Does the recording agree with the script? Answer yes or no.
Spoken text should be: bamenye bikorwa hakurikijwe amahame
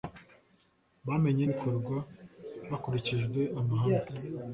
yes